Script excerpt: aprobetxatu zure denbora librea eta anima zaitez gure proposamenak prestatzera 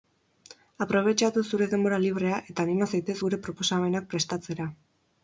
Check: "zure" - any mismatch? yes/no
no